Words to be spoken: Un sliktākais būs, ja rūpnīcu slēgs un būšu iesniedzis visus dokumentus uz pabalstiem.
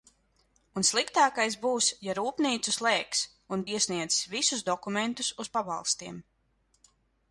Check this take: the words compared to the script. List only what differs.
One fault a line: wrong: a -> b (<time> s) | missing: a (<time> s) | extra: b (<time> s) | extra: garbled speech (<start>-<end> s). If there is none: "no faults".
missing: būšu (3.7 s)